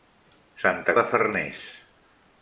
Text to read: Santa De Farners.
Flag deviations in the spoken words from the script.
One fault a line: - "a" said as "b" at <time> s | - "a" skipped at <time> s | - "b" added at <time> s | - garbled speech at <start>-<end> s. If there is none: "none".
none